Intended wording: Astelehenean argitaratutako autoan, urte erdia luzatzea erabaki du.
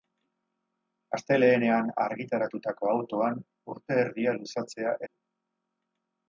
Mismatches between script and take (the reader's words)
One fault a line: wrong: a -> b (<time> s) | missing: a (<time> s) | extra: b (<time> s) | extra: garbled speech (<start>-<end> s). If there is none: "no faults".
missing: erabaki (5.0 s)